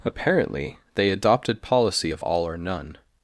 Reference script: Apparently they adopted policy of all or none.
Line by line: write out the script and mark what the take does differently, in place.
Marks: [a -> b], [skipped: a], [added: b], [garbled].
Apparently they adopted policy of all or none.